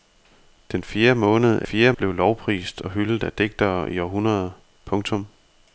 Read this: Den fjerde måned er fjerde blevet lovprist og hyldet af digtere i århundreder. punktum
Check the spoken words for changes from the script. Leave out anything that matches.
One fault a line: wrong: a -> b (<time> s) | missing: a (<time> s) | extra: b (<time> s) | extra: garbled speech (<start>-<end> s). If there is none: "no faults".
no faults